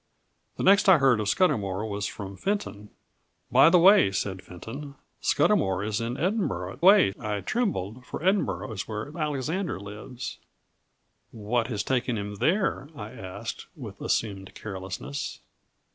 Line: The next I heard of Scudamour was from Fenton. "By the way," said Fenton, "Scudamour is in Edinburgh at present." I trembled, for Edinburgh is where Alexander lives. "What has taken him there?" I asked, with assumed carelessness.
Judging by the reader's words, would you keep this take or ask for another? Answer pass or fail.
fail